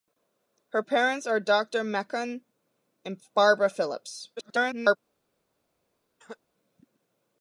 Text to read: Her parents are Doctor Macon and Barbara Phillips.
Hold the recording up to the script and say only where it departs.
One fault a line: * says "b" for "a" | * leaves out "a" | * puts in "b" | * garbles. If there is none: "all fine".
* garbles